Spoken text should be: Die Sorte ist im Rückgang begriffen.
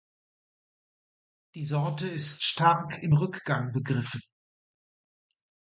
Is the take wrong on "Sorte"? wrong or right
right